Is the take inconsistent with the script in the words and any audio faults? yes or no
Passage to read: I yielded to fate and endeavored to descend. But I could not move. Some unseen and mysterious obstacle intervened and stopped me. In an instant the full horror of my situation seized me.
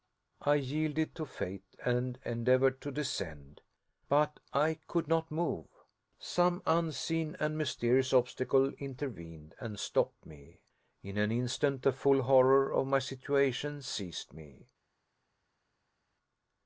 no